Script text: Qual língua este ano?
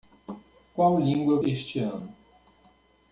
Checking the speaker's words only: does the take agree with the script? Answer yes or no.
yes